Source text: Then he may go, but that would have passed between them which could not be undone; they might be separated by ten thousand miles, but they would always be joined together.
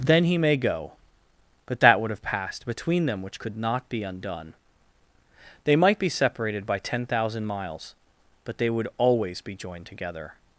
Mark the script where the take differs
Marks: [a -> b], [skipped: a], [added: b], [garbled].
Then he may go, but that would have passed between them which could not be undone; they might be separated by ten thousand miles, but they would always be joined together.